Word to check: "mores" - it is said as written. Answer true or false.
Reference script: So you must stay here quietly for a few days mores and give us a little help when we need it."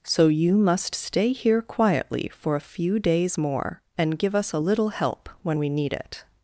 false